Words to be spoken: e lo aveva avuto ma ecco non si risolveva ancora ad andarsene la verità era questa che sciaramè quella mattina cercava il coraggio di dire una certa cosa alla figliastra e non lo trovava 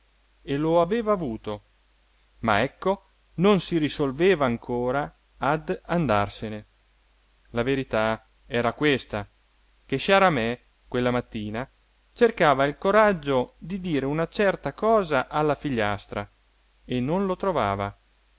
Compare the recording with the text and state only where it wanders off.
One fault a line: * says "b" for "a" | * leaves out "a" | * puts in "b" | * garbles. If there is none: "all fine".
all fine